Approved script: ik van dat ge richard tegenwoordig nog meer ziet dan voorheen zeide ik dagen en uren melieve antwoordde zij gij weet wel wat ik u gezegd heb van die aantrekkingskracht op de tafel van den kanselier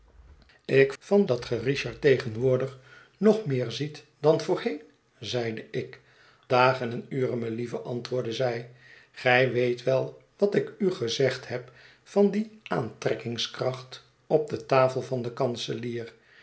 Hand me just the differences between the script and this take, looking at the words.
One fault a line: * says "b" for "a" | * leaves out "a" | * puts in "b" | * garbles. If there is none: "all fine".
all fine